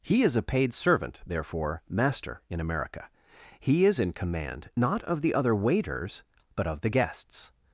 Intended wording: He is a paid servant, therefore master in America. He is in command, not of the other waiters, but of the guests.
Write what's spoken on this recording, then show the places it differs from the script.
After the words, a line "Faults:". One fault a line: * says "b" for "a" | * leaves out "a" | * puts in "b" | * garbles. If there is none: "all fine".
He is a paid servant, therefore master in America. He is in command, not of the other waiters, but of the guests.
Faults:
all fine